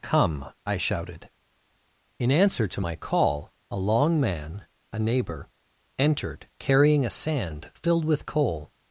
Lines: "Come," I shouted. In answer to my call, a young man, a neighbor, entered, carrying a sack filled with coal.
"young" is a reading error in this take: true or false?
true